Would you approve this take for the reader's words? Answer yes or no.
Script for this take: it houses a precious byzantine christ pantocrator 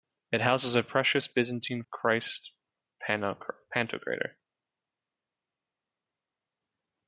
yes